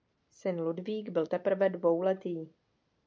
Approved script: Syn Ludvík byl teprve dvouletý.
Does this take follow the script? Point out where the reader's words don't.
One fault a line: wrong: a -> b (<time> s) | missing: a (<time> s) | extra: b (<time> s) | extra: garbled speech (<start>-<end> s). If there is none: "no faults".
no faults